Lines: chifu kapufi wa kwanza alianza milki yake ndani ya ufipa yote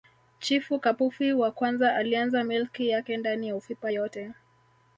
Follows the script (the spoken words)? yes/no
yes